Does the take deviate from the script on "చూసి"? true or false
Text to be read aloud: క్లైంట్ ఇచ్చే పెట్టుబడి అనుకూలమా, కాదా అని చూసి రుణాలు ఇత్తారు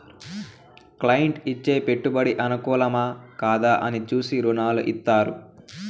false